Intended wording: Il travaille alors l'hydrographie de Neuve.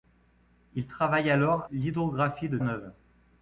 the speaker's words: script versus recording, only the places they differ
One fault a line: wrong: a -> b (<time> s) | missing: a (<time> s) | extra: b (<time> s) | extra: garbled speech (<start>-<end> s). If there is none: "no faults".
no faults